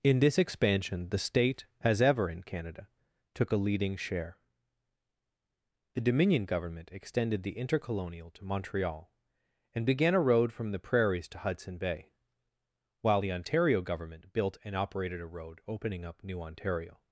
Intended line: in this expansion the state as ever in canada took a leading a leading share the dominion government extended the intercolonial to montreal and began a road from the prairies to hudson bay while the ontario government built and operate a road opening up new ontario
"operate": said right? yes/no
no